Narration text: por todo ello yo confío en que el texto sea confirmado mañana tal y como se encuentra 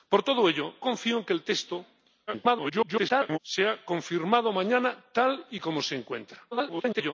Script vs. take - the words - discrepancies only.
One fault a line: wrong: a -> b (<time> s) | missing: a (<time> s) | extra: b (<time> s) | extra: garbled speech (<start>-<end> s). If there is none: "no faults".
missing: yo (0.8 s)
extra: garbled speech (2.3-3.4 s)
extra: garbled speech (6.5-7.1 s)